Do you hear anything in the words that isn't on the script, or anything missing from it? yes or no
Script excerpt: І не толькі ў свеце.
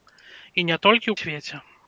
no